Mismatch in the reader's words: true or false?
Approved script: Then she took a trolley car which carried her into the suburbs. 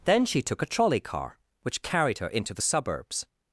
false